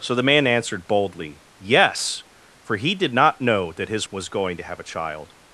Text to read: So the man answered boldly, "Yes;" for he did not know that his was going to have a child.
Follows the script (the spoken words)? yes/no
yes